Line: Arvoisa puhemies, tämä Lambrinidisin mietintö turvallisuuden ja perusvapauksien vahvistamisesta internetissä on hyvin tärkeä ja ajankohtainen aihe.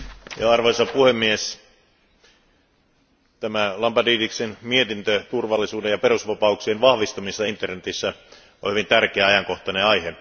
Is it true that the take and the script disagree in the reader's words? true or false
false